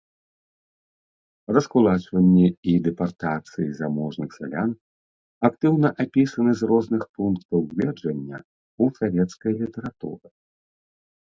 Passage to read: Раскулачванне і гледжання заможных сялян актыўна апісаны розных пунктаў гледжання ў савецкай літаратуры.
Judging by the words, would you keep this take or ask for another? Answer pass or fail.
fail